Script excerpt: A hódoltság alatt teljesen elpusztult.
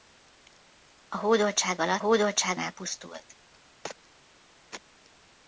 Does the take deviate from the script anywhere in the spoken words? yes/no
yes